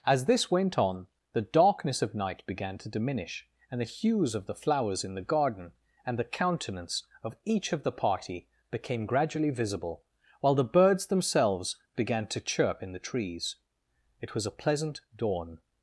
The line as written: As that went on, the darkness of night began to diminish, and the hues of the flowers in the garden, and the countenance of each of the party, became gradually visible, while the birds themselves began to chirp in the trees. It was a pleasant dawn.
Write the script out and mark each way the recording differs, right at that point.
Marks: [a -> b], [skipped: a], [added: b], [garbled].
As [that -> this] went on, the darkness of night began to diminish, and the hues of the flowers in the garden, and the countenance of each of the party, became gradually visible, while the birds themselves began to chirp in the trees. It was a pleasant dawn.